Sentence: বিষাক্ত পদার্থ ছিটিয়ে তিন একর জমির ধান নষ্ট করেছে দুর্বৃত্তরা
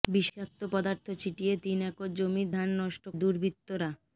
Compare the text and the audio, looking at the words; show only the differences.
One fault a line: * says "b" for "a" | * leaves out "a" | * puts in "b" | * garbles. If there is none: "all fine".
* leaves out "করেছে"